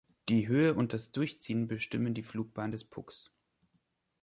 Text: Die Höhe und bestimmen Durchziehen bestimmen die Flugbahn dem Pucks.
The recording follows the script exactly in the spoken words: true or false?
false